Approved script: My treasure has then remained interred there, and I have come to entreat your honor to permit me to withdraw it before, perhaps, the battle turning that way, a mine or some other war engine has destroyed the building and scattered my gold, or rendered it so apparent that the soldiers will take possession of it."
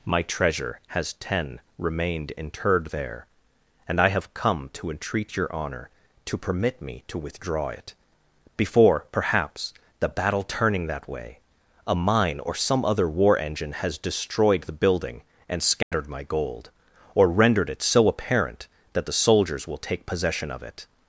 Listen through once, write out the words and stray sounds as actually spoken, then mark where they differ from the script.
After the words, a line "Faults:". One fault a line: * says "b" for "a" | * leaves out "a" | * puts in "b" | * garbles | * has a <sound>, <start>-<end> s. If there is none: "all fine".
My treasure has ten remained interred there, and I have come to entreat your honor to permit me to withdraw it before, perhaps, the battle turning that way, a mine or some other war engine has destroyed the building and scattered my gold, or rendered it so apparent that the soldiers will take possession of it."
Faults:
* says "ten" for "then"
* has a dropout, 15.8-15.9 s